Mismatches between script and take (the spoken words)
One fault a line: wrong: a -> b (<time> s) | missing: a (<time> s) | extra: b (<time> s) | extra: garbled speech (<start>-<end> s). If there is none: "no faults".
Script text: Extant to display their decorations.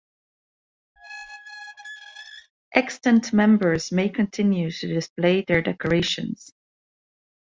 extra: members may continue (3.3 s)